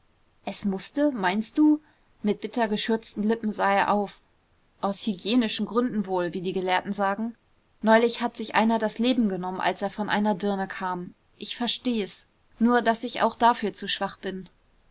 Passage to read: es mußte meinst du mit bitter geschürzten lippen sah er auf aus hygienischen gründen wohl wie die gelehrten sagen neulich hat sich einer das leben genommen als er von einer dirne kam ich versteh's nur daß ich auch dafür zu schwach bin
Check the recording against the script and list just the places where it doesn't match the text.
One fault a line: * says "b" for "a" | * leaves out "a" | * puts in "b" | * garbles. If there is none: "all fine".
all fine